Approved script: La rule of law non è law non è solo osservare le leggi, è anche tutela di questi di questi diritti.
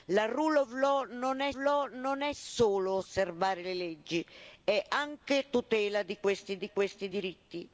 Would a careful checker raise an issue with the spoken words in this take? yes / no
no